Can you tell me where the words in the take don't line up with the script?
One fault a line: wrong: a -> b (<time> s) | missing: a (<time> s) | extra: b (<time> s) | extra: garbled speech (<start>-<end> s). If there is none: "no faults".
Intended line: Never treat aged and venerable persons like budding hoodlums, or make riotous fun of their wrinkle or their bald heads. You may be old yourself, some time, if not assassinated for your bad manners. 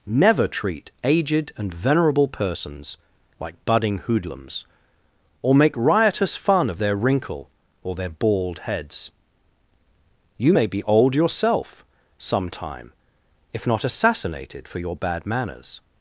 no faults